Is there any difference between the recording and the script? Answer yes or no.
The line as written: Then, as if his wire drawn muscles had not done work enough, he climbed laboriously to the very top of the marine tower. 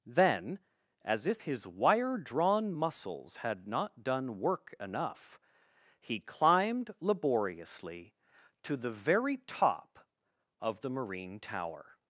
no